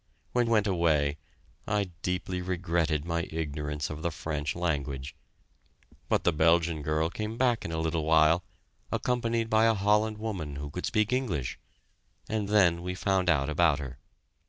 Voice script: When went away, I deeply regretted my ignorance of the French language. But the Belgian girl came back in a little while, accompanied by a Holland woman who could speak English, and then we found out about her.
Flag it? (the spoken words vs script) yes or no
no